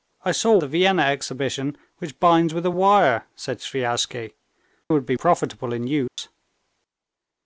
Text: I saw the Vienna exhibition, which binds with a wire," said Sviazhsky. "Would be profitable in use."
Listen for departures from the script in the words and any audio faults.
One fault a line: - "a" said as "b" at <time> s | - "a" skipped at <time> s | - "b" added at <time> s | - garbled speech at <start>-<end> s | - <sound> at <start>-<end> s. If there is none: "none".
- dropout at 6.1-6.2 s